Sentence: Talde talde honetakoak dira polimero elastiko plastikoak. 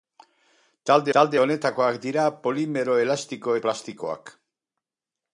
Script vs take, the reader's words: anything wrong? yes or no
no